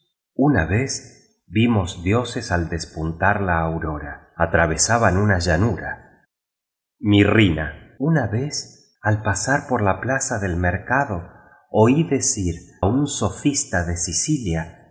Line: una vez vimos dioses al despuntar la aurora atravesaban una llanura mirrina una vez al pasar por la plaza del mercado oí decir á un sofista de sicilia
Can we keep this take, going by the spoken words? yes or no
no